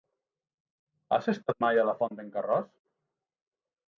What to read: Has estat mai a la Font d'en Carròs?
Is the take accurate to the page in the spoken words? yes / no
yes